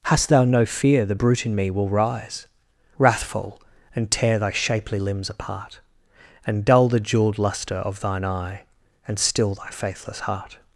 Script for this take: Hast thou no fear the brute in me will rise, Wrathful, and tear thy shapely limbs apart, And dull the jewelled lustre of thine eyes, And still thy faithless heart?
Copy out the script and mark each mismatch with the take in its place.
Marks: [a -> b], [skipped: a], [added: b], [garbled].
Hast thou no fear the brute in me will rise, Wrathful, and tear thy shapely limbs apart, And dull the jewelled lustre of thine [eyes, -> eye] And still thy faithless heart?